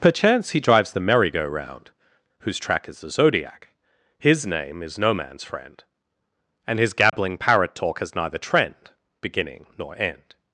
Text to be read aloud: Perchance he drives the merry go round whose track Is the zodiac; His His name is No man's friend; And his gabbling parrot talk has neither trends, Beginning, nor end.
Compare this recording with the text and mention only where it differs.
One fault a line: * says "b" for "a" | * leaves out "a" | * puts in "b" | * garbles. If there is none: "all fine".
* leaves out "His"
* says "trend" for "trends"